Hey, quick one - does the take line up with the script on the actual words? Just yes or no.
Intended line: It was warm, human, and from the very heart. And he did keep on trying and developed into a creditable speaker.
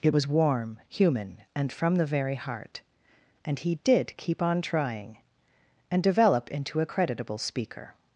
no